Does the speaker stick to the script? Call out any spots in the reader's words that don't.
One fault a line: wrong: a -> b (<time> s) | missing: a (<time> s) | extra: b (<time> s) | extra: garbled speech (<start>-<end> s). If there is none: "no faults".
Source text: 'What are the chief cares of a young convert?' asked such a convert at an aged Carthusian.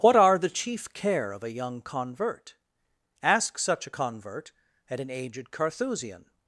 wrong: cares -> care (0.9 s)
wrong: asked -> ask (3.2 s)